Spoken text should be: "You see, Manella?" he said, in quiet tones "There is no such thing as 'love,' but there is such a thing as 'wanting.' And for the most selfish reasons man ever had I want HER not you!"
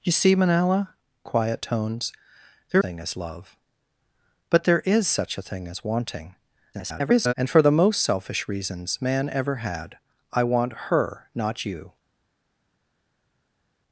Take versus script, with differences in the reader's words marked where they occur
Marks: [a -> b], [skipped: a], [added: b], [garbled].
"You see, Manella?" [skipped: he said, in] quiet tones "There [skipped: is no such] thing as 'love,' but there is such a thing as 'wanting.' [garbled] And for the most selfish reasons man ever had I want HER not you!"